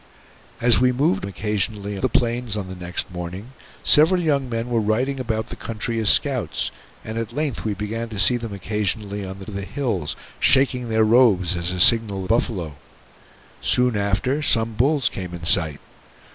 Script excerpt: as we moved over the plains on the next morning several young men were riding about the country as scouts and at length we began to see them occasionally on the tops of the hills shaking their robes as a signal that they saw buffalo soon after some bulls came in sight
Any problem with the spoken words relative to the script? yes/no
yes